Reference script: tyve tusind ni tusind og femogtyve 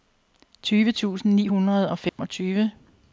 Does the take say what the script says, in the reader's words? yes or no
no